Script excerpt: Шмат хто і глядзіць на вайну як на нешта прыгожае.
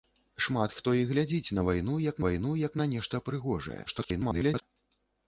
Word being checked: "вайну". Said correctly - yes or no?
yes